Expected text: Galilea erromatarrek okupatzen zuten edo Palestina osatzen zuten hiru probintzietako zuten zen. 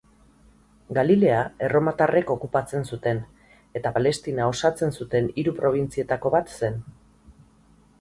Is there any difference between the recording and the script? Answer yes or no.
yes